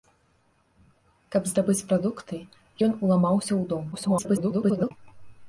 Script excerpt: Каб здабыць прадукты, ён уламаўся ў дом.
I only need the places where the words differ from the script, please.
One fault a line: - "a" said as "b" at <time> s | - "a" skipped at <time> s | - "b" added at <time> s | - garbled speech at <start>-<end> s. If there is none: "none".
- garbled speech at 3.9-4.9 s